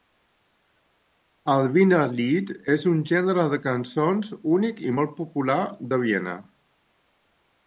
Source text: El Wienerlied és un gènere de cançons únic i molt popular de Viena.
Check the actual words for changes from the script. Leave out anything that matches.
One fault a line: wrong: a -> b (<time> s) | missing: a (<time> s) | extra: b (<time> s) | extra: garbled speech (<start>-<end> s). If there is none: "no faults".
no faults